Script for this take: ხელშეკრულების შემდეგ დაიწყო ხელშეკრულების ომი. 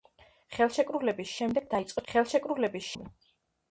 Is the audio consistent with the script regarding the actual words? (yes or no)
yes